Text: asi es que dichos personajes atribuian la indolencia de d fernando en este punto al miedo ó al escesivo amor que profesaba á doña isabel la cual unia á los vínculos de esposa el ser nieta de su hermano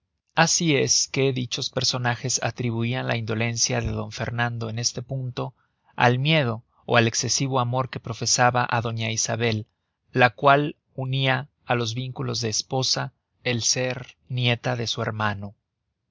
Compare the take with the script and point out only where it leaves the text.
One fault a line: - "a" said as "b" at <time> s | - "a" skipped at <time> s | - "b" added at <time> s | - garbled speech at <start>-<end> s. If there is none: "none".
none